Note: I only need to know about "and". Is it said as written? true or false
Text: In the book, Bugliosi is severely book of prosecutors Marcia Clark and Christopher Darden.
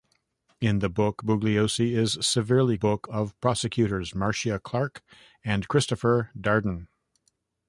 true